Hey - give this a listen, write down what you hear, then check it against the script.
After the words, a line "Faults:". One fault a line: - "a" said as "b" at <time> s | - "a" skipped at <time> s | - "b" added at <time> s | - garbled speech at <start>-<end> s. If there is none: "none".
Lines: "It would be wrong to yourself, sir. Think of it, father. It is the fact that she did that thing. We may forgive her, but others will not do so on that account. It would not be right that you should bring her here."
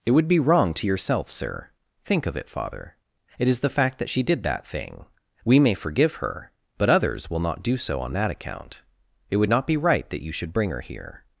"It would be wrong to yourself, sir. Think of it, father. It is the fact that she did that thing. We may forgive her, but others will not do so on that account. It would not be right that you should bring her here."
Faults:
none